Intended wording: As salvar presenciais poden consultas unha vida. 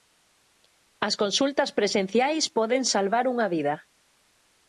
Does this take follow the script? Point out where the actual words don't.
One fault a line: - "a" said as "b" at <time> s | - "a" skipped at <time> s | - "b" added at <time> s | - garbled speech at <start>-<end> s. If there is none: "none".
- "salvar" said as "consultas" at 1.2 s
- "consultas" said as "salvar" at 2.9 s